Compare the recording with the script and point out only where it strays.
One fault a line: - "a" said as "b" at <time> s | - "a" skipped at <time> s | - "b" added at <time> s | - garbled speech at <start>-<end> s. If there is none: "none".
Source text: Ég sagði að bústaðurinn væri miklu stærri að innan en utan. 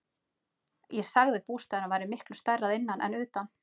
none